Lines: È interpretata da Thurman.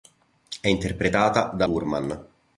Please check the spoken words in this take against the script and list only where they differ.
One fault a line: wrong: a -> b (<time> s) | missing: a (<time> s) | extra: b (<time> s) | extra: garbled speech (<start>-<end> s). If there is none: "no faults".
no faults